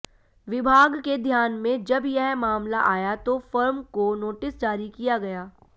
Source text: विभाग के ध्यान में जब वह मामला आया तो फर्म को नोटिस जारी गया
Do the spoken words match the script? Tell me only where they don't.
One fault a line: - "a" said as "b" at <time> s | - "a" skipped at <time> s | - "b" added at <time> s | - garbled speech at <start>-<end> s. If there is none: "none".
- "वह" said as "यह" at 2.0 s
- "किया" added at 4.9 s